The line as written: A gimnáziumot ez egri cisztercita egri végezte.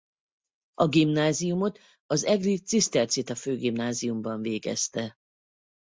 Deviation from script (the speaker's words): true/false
true